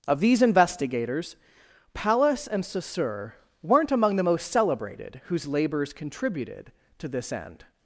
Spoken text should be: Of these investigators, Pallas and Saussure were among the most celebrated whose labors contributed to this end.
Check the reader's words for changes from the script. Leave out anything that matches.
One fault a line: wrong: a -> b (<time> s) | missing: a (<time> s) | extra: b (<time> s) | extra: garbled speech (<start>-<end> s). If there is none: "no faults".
wrong: were -> weren't (3.6 s)